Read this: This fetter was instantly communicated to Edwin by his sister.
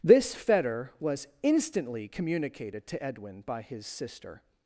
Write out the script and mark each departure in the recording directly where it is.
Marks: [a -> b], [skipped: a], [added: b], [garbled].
This fetter was instantly communicated to Edwin by his sister.